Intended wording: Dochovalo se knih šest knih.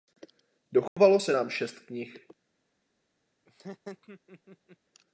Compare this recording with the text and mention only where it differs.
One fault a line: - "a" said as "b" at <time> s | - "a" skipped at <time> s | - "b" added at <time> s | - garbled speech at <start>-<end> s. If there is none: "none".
- "knih" said as "nám" at 1.3 s